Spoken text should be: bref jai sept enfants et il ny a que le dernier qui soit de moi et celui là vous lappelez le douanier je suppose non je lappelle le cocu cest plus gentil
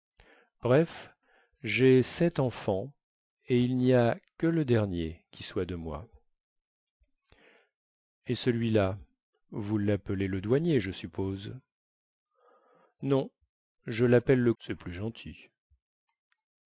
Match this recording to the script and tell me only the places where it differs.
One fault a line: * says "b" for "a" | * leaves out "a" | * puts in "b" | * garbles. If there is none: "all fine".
* leaves out "cocu"